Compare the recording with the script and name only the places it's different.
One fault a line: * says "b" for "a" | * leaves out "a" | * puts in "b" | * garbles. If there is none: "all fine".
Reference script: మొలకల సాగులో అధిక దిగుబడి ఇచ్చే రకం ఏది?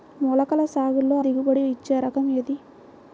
* leaves out "అధిక"